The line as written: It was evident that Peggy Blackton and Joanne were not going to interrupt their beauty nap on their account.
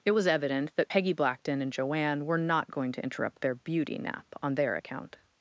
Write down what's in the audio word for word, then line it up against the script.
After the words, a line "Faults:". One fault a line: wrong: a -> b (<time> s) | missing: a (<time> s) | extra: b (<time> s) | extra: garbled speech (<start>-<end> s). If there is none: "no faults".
It was evident that Peggy Blackton and Joanne were not going to interrupt their beauty nap on their account.
Faults:
no faults